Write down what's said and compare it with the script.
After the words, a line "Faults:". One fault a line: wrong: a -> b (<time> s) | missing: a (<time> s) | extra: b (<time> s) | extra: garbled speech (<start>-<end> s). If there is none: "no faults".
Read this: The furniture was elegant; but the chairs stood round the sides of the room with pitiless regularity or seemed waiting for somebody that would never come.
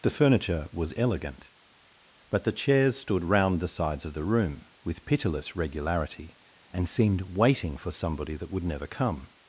The furniture was elegant; but the chairs stood round the sides of the room with pitiless regularity and seemed waiting for somebody that would never come.
Faults:
wrong: or -> and (6.7 s)